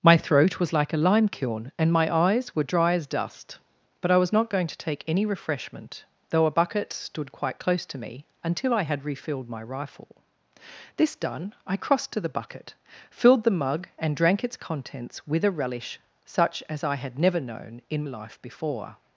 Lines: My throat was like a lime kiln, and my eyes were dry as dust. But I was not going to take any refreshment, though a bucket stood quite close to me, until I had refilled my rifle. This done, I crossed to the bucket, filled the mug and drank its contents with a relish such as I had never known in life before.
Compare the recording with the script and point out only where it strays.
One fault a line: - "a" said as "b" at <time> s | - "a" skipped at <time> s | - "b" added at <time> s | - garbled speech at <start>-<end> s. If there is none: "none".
none